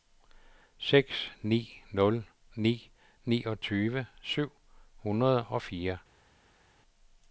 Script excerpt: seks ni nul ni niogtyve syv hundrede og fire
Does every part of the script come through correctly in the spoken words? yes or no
yes